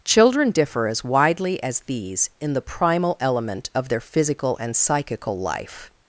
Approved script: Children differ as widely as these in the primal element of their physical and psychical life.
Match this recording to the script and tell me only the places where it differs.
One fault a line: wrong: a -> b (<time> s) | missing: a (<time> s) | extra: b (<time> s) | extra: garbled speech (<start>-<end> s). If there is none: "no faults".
no faults